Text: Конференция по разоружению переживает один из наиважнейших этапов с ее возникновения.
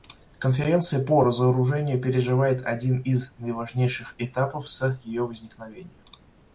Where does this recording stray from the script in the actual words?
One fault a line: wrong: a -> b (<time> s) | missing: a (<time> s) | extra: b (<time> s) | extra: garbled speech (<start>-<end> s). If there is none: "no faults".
no faults